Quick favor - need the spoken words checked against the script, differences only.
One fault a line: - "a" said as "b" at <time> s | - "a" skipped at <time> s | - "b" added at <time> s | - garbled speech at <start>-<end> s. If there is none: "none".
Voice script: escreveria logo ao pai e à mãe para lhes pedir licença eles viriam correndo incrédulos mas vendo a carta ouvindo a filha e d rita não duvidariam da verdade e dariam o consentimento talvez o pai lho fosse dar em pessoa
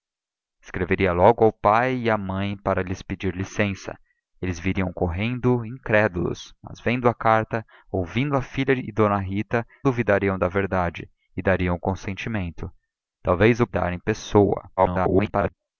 - "não" skipped at 9.6 s
- "pai lho fosse" skipped at 13.7 s
- garbled speech at 14.8-15.5 s